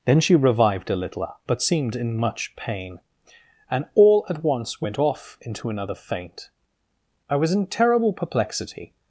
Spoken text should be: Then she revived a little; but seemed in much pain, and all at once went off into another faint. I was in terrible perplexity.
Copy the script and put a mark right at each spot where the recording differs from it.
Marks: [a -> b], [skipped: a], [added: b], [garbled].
Then she revived a little; but seemed in much pain, and all at once went off into another faint. I was in terrible perplexity.